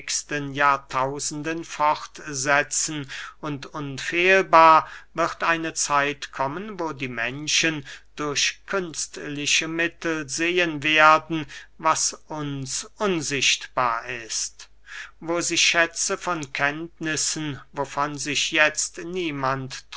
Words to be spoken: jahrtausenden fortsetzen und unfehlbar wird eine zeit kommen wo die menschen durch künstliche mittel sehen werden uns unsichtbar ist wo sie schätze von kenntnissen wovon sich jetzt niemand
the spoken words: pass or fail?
fail